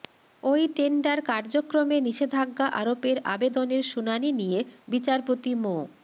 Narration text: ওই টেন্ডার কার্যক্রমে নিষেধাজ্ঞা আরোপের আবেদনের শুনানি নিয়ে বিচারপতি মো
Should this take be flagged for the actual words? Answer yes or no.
no